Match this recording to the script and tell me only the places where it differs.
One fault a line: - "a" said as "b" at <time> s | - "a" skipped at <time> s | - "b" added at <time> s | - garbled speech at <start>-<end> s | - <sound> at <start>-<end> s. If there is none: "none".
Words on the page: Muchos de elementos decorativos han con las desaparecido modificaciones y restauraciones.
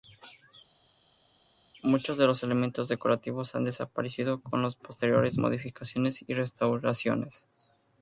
- "los" added at 2.2 s
- "desaparecido" added at 3.6 s
- "desaparecido" said as "posteriores" at 4.8 s